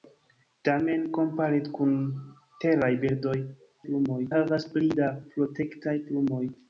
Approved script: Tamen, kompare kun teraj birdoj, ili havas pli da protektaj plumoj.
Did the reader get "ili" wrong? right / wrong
wrong